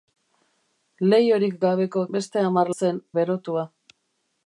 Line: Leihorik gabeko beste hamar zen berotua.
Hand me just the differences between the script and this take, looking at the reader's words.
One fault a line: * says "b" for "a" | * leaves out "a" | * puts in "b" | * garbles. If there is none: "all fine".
all fine